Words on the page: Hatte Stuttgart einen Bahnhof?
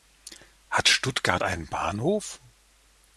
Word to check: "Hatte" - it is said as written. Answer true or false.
false